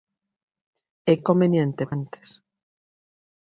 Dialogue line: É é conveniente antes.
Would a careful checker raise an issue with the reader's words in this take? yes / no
no